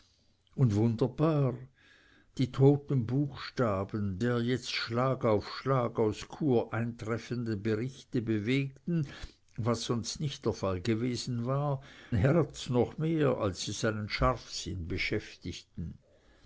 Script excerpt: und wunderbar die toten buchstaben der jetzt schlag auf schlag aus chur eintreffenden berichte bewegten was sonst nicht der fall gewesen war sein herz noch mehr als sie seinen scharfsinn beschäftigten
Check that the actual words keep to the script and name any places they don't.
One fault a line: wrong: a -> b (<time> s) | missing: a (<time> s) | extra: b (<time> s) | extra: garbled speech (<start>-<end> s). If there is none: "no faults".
missing: sein (11.8 s)